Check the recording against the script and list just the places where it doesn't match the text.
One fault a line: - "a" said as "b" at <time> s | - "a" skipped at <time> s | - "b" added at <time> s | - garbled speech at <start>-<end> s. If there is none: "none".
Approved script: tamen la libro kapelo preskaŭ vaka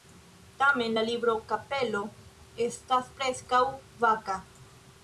- "estas" added at 2.7 s